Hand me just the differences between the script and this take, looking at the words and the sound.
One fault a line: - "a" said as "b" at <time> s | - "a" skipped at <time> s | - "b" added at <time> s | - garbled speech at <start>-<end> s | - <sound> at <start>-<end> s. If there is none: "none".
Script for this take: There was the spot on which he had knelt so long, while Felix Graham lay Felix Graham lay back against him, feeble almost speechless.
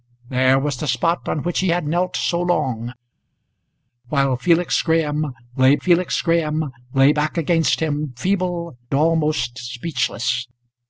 none